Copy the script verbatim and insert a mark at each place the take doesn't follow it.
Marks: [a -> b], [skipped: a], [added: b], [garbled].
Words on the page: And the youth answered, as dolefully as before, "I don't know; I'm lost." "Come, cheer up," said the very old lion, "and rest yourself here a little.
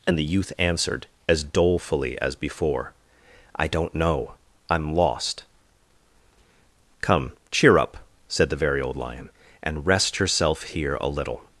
And the youth answered, as dolefully as before, "I don't know; I'm lost." "Come, cheer up," said the very old lion, "and rest yourself here a little.